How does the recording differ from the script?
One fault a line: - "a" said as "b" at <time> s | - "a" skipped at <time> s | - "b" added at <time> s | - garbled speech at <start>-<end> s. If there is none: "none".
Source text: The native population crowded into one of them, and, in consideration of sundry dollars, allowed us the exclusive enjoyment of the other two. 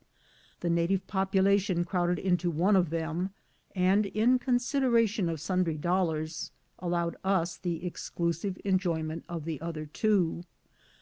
none